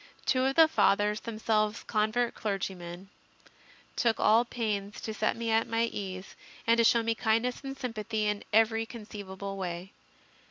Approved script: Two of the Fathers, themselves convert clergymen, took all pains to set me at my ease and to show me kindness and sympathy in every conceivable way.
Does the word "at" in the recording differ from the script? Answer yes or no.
no